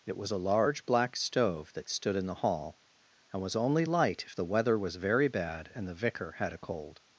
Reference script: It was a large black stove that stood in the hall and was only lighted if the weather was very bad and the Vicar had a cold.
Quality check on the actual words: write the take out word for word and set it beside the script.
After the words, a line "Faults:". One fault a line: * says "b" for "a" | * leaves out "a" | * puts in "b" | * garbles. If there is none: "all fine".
It was a large black stove that stood in the hall and was only light if the weather was very bad and the Vicar had a cold.
Faults:
* says "light" for "lighted"